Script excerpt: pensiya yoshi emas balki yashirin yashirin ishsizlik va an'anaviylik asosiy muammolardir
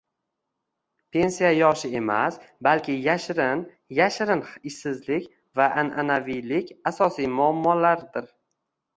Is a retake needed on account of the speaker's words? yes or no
no